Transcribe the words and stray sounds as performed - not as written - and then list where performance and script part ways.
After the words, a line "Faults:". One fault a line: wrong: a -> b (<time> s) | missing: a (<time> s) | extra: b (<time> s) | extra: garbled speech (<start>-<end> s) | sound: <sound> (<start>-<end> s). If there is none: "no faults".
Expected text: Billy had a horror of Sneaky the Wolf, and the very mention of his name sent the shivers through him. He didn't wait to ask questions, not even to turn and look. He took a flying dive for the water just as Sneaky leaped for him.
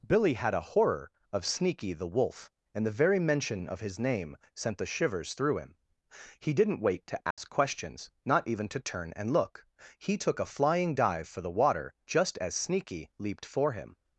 Billy had a horror of Sneaky the Wolf, and the very mention of his name sent the shivers through him. He didn't wait to ask questions, not even to turn and look. He took a flying dive for the water just as Sneaky leaped for him.
Faults:
sound: dropout (7.3-7.4 s)